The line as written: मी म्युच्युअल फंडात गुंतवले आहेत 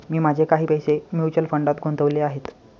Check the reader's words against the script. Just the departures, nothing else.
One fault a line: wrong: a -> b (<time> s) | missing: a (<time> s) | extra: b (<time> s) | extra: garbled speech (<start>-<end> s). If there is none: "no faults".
extra: माझे काही पैसे (0.2 s)